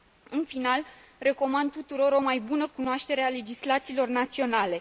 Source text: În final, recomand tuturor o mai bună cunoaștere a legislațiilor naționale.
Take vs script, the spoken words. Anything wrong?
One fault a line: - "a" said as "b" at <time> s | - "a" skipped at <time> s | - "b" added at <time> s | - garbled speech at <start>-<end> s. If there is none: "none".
none